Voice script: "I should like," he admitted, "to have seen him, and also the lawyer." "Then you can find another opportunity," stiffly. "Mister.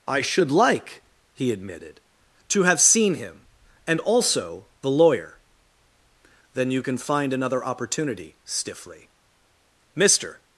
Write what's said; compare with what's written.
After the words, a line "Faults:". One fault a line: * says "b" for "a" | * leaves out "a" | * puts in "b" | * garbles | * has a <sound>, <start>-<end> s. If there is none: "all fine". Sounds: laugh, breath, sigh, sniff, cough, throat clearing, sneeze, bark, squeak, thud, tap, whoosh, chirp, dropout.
"I should like," he admitted, "to have seen him, and also the lawyer." "Then you can find another opportunity," stiffly. "Mister.
Faults:
all fine